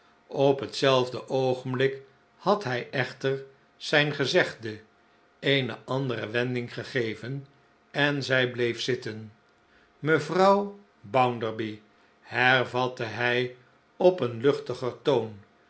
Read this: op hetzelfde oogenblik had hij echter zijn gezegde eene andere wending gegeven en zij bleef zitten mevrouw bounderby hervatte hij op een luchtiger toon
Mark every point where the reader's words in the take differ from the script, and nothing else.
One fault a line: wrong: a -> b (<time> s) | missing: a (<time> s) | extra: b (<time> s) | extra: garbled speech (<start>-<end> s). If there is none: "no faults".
no faults